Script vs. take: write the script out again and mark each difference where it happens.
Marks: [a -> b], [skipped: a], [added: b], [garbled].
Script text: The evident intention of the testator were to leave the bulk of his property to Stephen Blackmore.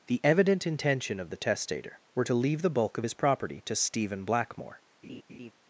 The evident intention of the testator were to leave the bulk of his property to Stephen Blackmore.